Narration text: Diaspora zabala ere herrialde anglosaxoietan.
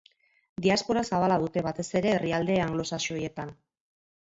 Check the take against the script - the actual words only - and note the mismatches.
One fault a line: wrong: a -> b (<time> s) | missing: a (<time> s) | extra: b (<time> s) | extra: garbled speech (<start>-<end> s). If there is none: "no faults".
extra: dute batez (1.4 s)